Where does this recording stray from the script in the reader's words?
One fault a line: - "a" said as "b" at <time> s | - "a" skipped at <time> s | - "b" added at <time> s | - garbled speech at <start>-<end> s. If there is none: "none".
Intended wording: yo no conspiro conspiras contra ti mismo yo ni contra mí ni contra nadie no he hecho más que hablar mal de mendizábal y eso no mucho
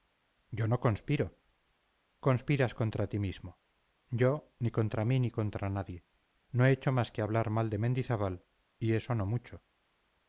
none